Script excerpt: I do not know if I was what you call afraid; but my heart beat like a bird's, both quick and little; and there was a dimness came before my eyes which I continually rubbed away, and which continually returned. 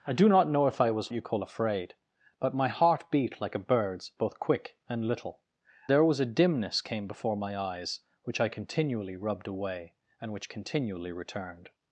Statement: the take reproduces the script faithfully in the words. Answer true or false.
false